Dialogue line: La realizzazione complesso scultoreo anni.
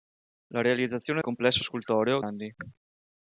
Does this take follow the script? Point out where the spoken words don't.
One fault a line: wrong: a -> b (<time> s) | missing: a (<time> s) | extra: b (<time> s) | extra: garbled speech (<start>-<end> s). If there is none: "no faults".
no faults